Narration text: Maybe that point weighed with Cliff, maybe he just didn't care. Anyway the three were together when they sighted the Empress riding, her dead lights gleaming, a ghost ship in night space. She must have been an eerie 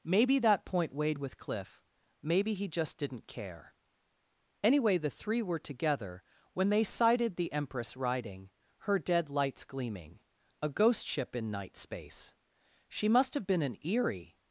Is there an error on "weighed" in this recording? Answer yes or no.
no